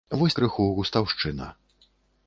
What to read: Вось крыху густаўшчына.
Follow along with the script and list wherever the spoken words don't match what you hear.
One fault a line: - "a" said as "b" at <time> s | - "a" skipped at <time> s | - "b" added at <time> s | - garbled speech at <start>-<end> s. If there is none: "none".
none